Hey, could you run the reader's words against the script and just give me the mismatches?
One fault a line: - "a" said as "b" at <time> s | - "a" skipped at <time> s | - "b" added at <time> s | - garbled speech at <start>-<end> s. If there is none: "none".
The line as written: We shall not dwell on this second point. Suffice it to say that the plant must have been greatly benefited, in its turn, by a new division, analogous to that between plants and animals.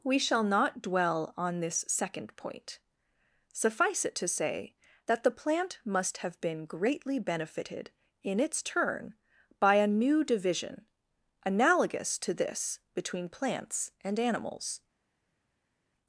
- "that" said as "this" at 12.3 s